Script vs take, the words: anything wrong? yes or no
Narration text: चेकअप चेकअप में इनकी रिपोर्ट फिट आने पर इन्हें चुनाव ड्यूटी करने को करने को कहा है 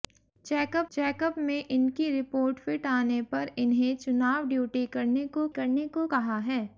no